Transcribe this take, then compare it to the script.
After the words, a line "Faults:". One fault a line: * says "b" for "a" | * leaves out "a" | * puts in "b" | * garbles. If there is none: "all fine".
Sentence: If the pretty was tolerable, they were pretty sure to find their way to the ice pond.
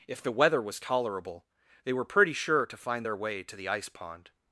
If the weather was tolerable, they were pretty sure to find their way to the ice pond.
Faults:
* says "weather" for "pretty"